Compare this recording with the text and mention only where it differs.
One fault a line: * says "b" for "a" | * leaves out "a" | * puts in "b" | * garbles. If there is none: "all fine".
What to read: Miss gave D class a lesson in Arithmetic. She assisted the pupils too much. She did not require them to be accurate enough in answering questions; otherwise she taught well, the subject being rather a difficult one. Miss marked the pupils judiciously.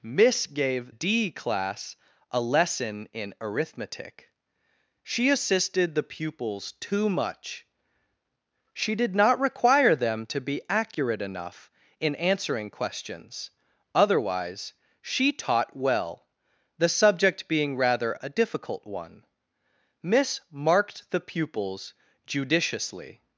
all fine